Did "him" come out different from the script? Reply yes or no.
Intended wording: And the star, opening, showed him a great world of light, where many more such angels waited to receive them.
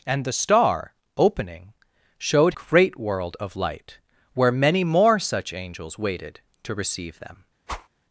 yes